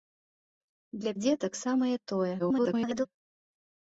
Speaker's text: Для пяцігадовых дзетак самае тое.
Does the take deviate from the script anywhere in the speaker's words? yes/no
yes